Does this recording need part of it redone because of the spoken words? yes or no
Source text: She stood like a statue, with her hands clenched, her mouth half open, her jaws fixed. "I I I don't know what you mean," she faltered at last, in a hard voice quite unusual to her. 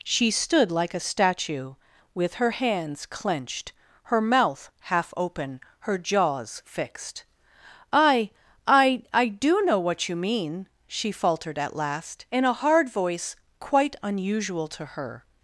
yes